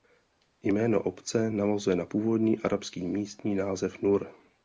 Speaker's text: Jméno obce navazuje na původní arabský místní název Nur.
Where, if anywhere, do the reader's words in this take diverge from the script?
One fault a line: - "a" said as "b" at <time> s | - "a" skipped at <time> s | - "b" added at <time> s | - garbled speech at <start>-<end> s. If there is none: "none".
none